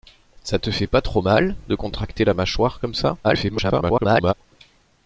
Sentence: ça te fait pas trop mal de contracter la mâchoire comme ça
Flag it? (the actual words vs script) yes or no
yes